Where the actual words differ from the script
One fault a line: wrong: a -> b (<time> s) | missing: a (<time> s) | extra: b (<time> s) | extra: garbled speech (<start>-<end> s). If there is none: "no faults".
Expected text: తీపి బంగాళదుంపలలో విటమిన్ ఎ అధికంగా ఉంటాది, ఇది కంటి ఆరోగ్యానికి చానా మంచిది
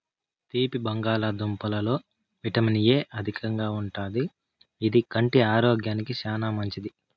no faults